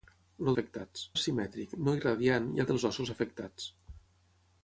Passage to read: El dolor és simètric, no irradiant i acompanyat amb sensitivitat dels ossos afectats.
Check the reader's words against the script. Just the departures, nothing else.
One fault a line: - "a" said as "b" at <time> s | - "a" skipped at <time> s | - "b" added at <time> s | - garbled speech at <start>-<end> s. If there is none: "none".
- "dolor" said as "afectats" at 0.5 s
- "acompanyat amb sensitivitat" skipped at 2.6 s